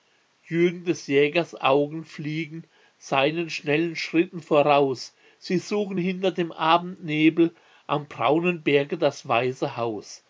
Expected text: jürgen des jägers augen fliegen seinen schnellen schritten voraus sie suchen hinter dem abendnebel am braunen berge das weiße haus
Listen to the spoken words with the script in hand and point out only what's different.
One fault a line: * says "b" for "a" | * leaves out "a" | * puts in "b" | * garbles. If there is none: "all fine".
all fine